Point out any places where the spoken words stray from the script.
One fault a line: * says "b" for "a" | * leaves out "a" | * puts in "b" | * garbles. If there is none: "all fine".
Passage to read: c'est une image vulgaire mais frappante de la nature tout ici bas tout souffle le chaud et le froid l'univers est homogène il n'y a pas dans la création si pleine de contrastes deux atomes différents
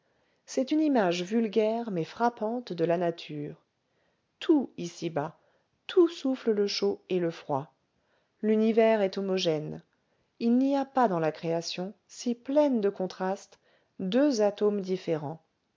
all fine